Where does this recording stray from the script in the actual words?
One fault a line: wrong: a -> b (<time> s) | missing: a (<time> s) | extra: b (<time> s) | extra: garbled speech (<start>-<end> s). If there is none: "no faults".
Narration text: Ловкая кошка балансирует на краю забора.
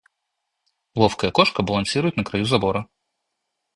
no faults